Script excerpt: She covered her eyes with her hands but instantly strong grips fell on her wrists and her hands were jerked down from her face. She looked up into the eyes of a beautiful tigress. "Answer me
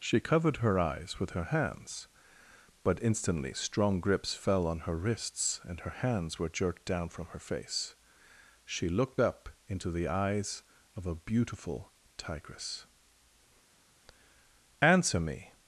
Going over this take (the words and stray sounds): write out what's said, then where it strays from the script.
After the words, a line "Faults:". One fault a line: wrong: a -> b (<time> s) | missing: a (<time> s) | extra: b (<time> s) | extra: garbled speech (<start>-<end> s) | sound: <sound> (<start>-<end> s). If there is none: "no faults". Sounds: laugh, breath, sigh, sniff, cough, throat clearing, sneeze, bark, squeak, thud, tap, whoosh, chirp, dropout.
She covered her eyes with her hands but instantly strong grips fell on her wrists and her hands were jerked down from her face. She looked up into the eyes of a beautiful tigress. "Answer me
Faults:
no faults